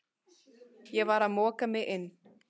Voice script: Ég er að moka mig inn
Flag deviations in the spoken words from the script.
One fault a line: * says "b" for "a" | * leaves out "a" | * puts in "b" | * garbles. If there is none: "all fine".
* says "var" for "er"